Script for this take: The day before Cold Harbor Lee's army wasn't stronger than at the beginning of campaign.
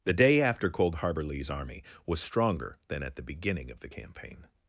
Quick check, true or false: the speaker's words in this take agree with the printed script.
false